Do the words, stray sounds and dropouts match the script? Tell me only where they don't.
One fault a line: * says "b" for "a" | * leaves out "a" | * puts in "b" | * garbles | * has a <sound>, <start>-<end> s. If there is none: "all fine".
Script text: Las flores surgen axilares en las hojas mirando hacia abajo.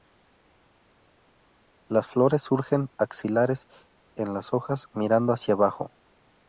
all fine